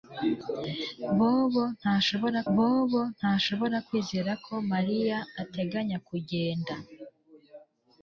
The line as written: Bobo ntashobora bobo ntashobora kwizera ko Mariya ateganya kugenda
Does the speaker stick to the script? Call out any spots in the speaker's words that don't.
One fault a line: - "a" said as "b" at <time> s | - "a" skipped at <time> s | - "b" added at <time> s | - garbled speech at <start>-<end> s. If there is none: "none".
none